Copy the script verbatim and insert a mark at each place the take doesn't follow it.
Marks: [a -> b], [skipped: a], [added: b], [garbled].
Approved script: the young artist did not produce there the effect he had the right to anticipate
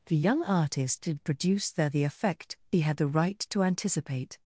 the young artist did [skipped: not] produce there the effect he had the right to anticipate